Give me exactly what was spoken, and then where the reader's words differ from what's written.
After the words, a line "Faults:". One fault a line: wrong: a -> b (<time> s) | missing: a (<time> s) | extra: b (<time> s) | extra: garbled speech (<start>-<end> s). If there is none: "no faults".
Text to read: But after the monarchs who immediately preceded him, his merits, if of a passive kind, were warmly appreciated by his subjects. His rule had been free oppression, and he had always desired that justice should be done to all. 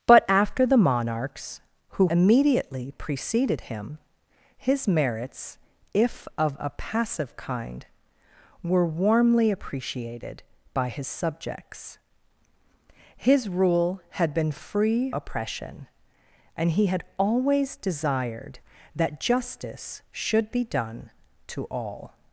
But after the monarchs who immediately preceded him, his merits, if of a passive kind, were warmly appreciated by his subjects. His rule had been free oppression, and he had always desired that justice should be done to all.
Faults:
no faults